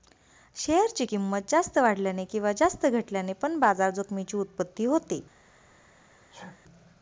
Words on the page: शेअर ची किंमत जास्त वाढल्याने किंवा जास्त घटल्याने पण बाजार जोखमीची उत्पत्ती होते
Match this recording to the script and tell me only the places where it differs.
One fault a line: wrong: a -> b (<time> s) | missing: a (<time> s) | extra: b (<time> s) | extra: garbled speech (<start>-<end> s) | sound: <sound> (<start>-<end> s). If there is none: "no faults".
sound: sneeze (6.3-6.6 s)